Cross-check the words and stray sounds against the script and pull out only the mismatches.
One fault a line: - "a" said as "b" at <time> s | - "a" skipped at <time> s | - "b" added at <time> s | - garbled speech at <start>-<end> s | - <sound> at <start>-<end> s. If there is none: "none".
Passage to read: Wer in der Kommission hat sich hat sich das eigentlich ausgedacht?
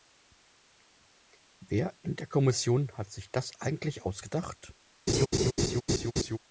- "hat sich" skipped at 3.3 s
- laugh at 5.1-6.4 s